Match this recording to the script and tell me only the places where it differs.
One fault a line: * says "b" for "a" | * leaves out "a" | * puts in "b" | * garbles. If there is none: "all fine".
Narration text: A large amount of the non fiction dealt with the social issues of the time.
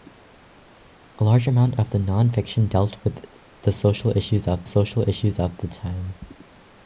* puts in "social issues of"